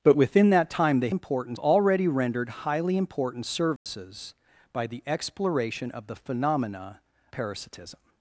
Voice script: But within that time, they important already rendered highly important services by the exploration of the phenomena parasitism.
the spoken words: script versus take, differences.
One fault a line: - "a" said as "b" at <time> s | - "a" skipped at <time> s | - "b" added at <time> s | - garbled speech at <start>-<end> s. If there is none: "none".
none